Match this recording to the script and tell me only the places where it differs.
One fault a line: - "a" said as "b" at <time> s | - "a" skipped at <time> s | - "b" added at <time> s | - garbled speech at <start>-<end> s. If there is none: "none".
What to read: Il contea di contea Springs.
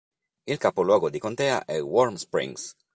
- "contea" said as "capoluogo" at 0.6 s
- "è Warm" added at 1.7 s